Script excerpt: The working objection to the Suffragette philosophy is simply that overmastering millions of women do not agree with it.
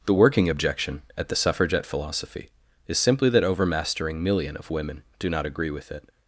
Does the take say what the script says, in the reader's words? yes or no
no